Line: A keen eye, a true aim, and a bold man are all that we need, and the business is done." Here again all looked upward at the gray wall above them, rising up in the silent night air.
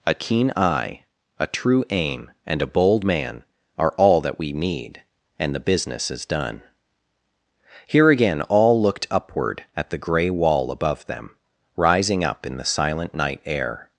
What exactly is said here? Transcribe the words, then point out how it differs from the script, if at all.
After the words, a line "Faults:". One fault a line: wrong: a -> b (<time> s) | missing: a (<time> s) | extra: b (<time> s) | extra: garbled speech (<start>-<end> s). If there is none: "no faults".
A keen eye, a true aim, and a bold man are all that we need, and the business is done." Here again all looked upward at the gray wall above them, rising up in the silent night air.
Faults:
no faults